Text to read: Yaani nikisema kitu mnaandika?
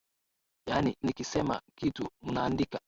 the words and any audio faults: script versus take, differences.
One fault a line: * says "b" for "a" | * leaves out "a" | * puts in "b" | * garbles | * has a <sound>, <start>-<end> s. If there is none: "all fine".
all fine